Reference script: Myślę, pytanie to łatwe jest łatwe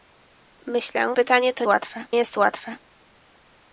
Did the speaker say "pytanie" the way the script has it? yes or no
yes